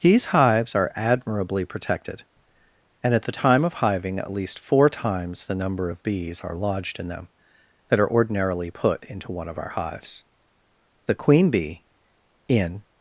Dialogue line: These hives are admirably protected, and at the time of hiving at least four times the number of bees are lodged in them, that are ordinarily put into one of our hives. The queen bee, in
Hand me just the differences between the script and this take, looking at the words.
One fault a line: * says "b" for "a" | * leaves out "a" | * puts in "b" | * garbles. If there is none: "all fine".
all fine